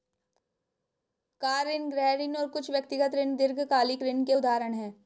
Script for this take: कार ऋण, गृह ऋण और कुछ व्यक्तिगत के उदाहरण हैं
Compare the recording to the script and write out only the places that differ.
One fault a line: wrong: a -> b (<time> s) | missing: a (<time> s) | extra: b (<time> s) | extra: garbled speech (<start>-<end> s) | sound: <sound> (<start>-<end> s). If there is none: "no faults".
extra: ऋण दीर्घकालिक ऋण (3.1 s)